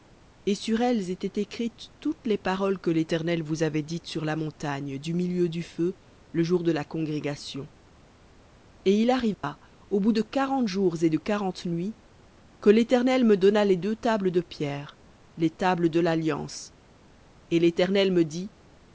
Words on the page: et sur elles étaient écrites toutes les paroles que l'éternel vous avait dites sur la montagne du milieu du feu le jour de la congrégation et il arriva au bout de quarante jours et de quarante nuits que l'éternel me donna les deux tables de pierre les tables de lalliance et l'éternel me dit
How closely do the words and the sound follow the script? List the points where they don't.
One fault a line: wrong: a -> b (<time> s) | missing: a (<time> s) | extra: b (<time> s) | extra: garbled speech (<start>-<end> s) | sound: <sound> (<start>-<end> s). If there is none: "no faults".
sound: dropout (9.3-9.4 s)